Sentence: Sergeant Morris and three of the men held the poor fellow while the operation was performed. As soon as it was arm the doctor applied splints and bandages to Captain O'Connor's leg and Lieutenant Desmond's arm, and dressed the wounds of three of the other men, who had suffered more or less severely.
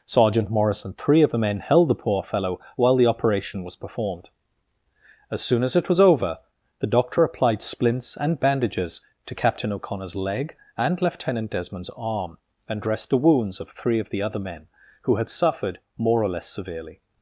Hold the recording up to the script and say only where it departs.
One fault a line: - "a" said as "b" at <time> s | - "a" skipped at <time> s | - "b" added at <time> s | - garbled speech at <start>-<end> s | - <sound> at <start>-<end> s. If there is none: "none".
- "arm" said as "over" at 6.0 s